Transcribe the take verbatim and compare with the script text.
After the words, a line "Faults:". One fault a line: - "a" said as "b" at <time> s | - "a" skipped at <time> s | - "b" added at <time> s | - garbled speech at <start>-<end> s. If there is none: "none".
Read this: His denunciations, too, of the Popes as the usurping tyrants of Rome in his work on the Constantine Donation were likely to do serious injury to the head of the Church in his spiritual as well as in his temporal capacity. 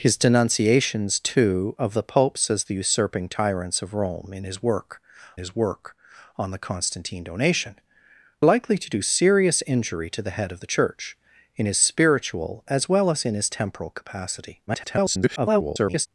His denunciations, too, of the Popes as the usurping tyrants of Rome in his work his work on the Constantine Donation likely to do serious injury to the head of the Church in his spiritual as well as in his temporal capacity. [garbled]
Faults:
- "his work" added at 5.4 s
- "were" skipped at 7.7 s
- garbled speech at 14.7-16.1 s